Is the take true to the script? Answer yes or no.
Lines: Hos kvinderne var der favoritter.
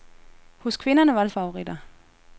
yes